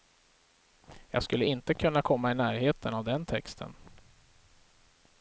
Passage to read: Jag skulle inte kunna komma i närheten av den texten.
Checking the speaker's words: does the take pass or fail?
pass